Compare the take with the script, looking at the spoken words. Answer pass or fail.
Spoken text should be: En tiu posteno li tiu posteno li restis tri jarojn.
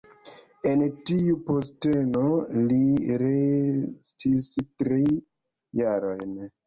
fail